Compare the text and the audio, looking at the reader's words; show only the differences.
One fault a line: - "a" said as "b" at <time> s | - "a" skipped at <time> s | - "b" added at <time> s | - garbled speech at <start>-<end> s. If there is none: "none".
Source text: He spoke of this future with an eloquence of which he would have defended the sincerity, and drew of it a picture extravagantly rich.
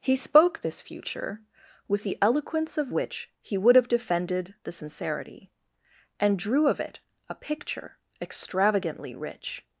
- "of" skipped at 0.6 s
- "an" said as "the" at 2.0 s